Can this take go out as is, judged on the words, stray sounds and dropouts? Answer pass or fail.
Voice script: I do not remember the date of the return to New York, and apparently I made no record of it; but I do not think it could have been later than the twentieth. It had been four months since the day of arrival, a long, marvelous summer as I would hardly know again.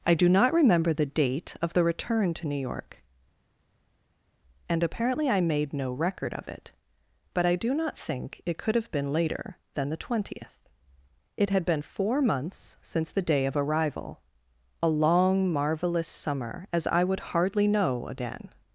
pass